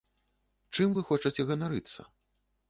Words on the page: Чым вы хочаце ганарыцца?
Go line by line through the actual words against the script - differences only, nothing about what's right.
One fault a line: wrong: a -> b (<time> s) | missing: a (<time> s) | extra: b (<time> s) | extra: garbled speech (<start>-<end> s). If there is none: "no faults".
no faults